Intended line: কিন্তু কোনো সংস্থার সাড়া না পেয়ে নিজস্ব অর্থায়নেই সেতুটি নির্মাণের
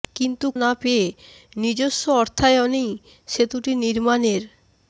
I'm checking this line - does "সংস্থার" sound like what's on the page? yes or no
no